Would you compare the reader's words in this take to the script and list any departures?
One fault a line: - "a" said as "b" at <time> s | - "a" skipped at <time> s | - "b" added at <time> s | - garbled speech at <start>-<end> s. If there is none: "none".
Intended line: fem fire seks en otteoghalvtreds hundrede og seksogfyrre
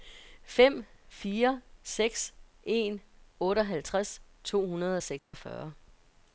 - "to" added at 4.4 s